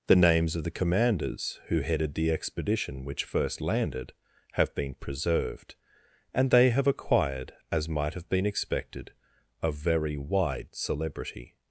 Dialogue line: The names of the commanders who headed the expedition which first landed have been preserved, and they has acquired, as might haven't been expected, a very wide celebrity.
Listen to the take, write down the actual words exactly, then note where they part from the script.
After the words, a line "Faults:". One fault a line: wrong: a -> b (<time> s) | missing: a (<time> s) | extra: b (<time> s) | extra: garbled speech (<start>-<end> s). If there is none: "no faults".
The names of the commanders who headed the expedition which first landed have been preserved, and they have acquired, as might have been expected, a very wide celebrity.
Faults:
wrong: has -> have (6.7 s)
wrong: haven't -> have (8.2 s)